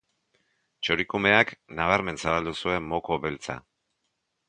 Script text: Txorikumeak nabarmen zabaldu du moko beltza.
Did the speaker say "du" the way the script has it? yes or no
no